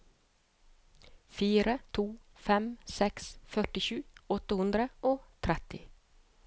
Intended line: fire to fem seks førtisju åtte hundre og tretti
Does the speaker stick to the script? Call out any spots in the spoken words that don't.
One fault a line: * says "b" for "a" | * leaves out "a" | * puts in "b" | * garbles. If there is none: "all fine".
all fine